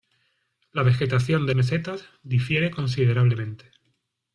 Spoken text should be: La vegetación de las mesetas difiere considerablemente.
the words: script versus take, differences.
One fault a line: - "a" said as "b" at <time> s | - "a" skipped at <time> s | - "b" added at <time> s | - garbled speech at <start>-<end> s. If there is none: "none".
- "las" skipped at 1.6 s